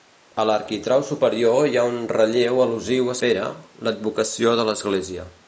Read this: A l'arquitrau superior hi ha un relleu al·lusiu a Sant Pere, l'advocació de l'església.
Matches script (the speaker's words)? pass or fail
fail